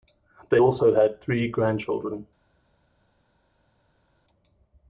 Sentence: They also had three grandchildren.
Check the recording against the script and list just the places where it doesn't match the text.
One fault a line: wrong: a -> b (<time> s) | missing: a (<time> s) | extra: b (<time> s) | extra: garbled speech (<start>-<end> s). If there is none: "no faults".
no faults